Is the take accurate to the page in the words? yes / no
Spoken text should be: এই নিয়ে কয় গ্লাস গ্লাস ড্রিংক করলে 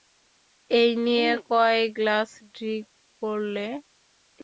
no